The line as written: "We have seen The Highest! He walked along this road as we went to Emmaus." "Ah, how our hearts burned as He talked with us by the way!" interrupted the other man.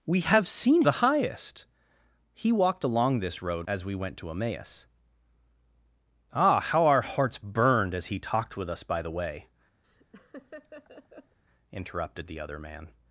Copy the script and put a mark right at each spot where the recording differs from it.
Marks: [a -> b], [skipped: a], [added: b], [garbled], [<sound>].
"We have seen The Highest! He walked along this road as we went to Emmaus." "Ah, how our hearts burned as He talked with us by the way!" [laugh] interrupted the other man.